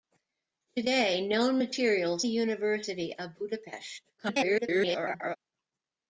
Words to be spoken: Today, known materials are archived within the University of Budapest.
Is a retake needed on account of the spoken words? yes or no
yes